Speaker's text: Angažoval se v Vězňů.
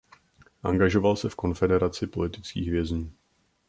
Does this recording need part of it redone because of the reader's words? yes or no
yes